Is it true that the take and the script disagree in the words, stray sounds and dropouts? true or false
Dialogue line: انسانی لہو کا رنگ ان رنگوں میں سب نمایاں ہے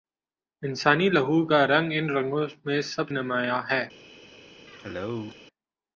true